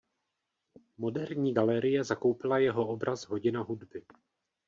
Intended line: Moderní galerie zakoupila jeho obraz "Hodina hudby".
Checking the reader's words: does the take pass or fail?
pass